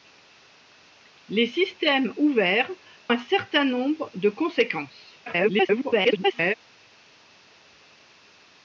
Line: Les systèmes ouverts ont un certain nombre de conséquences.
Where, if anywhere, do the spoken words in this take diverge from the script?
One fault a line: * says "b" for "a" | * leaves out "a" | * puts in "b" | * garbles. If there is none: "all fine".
* leaves out "ont"
* garbles